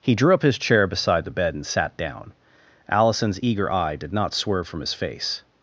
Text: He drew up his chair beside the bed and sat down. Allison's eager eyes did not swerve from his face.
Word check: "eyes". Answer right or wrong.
wrong